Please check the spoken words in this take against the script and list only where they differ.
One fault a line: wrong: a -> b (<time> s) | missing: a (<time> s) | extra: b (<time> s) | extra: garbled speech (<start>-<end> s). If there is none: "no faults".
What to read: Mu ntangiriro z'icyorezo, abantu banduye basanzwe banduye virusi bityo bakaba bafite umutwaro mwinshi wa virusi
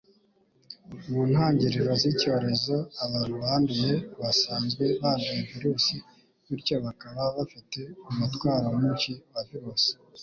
no faults